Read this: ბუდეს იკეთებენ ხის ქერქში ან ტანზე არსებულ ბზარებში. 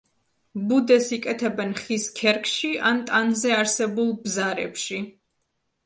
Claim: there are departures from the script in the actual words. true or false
false